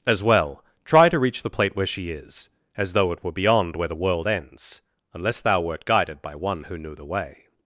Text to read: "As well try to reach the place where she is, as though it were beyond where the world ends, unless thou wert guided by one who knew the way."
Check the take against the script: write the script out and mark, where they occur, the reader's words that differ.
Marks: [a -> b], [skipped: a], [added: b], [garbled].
"As well try to reach the [place -> plate] where she is, as though it were beyond where the world ends, unless thou wert guided by one who knew the way."